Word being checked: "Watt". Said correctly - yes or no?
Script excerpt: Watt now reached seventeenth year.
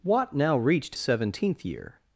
yes